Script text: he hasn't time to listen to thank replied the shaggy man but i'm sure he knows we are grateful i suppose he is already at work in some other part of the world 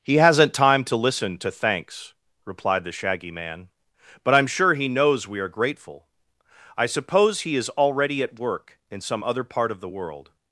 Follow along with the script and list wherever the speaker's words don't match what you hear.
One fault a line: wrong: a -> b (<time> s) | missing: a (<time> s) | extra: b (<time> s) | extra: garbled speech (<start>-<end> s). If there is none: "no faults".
wrong: thank -> thanks (1.5 s)